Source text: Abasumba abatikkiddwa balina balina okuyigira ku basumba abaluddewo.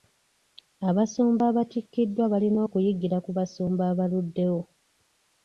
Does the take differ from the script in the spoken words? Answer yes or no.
yes